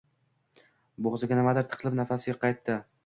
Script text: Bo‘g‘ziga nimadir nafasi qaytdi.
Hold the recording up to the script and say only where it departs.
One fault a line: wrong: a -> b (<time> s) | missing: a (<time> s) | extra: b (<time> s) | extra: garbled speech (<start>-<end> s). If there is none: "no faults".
extra: tiqilib (1.8 s)